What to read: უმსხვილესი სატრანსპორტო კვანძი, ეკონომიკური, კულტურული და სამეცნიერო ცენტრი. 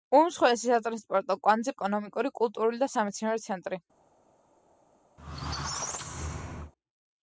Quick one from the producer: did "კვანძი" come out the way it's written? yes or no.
yes